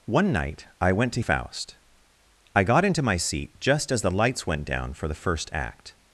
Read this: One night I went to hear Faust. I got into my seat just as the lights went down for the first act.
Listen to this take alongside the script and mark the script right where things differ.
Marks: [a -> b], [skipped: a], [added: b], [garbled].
One night I went to [skipped: hear] Faust. I got into my seat just as the lights went down for the first act.